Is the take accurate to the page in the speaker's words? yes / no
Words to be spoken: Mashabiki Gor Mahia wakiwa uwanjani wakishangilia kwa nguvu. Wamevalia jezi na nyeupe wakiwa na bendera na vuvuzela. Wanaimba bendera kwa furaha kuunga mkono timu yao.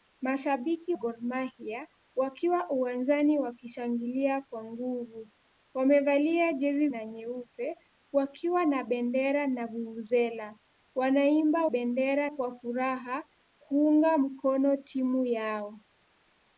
yes